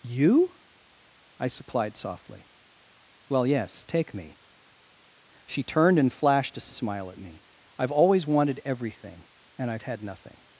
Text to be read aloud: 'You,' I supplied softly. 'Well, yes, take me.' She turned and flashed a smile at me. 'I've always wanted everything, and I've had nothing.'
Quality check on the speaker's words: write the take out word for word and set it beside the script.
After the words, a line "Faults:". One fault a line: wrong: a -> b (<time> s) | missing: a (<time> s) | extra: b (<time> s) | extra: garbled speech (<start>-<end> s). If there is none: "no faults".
'You,' I supplied softly. 'Well, yes, take me.' She turned and flashed a smile at me. 'I've always wanted everything, and I've had nothing.'
Faults:
no faults